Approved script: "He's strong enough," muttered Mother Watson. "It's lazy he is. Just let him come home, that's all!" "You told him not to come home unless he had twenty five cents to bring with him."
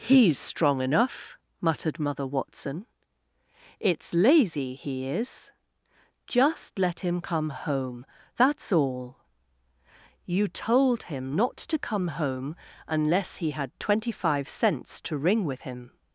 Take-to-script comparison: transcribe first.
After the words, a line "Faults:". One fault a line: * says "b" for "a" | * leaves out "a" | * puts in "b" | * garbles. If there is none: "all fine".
"He's strong enough," muttered Mother Watson. "It's lazy he is. Just let him come home, that's all!" "You told him not to come home unless he had twenty five cents to ring with him."
Faults:
* says "ring" for "bring"